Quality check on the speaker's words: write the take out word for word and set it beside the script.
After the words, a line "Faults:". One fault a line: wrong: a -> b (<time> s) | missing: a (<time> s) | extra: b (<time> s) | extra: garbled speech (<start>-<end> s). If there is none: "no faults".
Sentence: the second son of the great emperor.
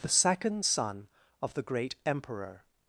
the second son of the great emperor.
Faults:
no faults